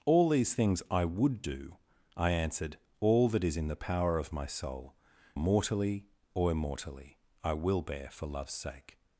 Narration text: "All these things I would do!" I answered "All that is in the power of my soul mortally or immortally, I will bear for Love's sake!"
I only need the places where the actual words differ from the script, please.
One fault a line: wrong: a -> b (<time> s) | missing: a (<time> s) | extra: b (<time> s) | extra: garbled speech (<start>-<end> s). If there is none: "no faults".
no faults